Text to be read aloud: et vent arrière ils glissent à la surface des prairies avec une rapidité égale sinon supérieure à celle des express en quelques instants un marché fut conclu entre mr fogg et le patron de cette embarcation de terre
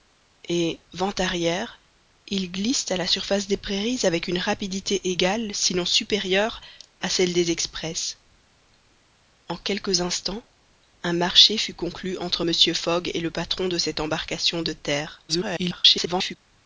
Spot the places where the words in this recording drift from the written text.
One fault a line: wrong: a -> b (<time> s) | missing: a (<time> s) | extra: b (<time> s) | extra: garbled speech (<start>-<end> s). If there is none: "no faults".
extra: garbled speech (15.3-16.4 s)